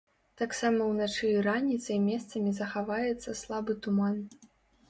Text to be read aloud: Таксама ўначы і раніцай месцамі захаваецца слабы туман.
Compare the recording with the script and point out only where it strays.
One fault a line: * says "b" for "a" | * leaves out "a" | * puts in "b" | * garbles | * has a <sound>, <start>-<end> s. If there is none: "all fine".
all fine